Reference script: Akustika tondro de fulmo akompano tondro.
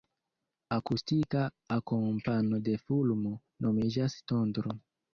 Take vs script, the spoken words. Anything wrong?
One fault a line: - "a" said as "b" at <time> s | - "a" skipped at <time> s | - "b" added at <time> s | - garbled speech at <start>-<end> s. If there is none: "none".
- "tondro" said as "akompano" at 1.8 s
- "akompano" said as "nomiĝas" at 3.7 s